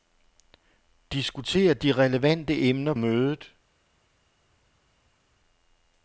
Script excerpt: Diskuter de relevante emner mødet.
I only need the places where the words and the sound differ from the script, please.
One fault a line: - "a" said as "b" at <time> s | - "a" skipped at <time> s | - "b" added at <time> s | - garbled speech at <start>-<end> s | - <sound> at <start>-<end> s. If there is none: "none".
none